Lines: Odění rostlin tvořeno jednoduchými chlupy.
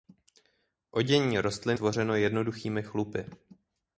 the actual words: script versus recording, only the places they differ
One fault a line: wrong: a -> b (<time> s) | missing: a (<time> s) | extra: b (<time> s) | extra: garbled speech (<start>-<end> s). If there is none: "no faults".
no faults